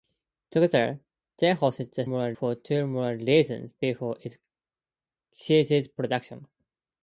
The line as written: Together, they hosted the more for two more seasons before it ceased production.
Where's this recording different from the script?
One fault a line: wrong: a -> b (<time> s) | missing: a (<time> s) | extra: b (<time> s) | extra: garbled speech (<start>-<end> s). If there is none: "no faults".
no faults